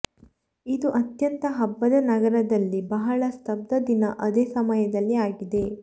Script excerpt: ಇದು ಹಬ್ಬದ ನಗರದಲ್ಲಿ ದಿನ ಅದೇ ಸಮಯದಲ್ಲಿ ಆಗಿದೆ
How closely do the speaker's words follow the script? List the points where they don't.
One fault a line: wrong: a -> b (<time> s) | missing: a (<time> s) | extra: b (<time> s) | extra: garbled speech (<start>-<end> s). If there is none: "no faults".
extra: ಅತ್ಯಂತ (1.0 s)
extra: ಬಹಳ ಸ್ತಬ್ಧ (2.9 s)